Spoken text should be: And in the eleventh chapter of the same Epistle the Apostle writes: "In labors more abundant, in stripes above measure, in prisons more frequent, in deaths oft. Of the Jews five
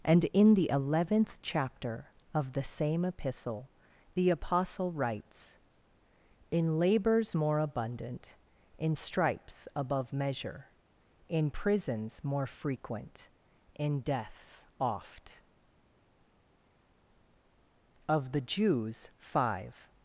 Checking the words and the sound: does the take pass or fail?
pass